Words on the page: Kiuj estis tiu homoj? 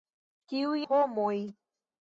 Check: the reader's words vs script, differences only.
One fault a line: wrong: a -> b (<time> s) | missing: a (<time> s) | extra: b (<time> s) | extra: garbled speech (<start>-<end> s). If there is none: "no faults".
missing: estis tiu (0.8 s)